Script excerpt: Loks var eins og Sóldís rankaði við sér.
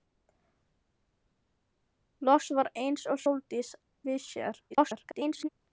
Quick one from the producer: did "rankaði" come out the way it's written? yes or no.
no